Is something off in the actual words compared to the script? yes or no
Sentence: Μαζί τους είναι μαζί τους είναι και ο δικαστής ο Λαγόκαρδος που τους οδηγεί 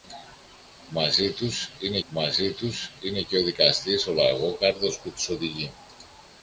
no